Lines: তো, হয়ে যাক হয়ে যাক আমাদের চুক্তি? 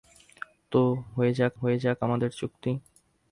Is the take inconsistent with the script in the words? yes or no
no